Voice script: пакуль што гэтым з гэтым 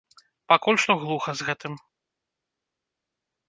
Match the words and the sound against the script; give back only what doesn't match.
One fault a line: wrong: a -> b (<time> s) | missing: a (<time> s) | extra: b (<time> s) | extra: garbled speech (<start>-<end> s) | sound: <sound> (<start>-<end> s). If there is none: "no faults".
wrong: гэтым -> глуха (1.0 s)